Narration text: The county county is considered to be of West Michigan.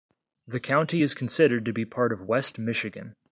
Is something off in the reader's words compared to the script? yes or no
yes